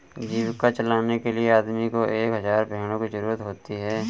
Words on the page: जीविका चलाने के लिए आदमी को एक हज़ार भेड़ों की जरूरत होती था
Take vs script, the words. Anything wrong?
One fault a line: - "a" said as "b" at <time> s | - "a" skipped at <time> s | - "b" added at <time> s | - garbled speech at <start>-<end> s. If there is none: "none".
- "था" said as "है" at 3.8 s